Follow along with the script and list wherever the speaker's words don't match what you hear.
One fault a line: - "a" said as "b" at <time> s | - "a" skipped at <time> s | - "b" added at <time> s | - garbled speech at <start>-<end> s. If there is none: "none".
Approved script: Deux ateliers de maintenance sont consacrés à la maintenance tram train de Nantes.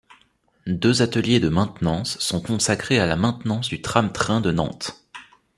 - "du" added at 3.7 s